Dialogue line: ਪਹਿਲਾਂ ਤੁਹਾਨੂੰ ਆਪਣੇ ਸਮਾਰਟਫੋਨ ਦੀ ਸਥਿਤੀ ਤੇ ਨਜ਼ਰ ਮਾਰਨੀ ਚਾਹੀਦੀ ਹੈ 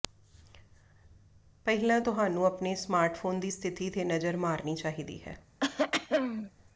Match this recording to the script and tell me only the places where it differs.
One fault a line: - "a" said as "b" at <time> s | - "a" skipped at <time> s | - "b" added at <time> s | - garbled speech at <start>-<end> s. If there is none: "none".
none